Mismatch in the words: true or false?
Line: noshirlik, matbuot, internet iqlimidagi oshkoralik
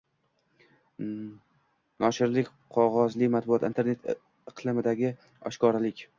true